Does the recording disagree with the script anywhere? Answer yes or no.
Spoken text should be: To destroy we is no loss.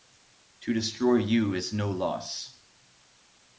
yes